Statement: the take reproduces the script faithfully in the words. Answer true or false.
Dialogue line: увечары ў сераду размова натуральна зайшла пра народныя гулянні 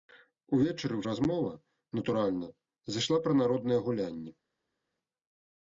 false